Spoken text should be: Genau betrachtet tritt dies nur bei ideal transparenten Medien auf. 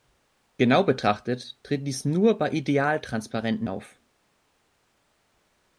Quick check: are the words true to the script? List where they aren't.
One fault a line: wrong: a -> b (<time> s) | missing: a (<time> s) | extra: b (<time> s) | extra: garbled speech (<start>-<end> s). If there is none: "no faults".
missing: Medien (3.7 s)